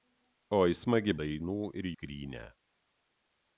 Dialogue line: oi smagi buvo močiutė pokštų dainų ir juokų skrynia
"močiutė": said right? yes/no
no